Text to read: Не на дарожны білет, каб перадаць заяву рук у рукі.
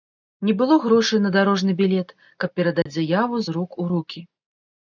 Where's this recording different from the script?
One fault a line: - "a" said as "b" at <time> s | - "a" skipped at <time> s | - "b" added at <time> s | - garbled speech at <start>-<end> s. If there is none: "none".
- "было грошай" added at 0.6 s
- "з" added at 3.5 s